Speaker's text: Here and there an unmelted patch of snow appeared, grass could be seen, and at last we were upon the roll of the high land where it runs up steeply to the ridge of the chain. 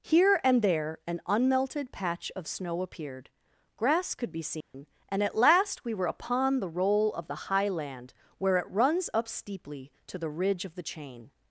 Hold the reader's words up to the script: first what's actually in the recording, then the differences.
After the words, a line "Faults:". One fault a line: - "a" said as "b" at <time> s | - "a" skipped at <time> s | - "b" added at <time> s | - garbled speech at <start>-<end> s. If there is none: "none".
Here and there an unmelted patch of snow appeared, grass could be seen, and at last we were upon the roll of the high land where it runs up steeply to the ridge of the chain.
Faults:
none